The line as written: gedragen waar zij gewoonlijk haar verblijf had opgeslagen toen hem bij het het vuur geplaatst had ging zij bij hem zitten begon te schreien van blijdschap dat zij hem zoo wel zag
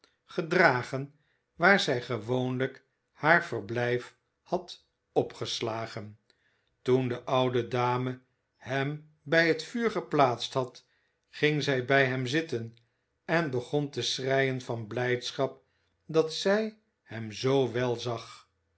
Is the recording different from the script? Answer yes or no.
yes